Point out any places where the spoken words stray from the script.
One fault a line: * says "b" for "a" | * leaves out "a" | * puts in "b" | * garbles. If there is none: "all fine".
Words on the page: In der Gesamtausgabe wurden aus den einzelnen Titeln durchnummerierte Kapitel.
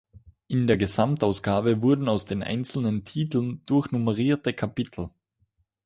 all fine